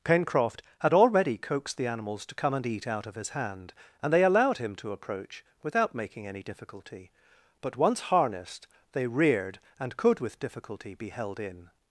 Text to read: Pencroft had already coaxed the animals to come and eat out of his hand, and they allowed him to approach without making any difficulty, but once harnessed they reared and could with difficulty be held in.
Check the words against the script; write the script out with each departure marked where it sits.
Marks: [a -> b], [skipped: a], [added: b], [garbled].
Pencroft had already coaxed the animals to come and eat out of his hand, and they allowed him to approach without making any difficulty, but once harnessed they reared and could with difficulty be held in.